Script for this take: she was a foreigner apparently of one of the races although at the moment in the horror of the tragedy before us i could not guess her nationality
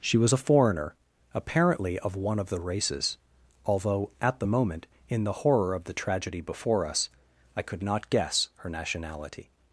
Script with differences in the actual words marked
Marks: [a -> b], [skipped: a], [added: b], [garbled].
she was a foreigner apparently of one of the races although at the moment in the horror of the tragedy before us i could not guess her nationality